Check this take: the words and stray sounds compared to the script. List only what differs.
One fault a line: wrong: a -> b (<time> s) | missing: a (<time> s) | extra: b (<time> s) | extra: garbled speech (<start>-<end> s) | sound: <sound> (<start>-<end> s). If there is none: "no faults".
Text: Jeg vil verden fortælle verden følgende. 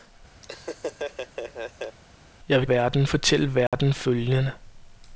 sound: laugh (0.4-2.0 s)
sound: dropout (3.7-3.7 s)